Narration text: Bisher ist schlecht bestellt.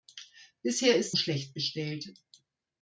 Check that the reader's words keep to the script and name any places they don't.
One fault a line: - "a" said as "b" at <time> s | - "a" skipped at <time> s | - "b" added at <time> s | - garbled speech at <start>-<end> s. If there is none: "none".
none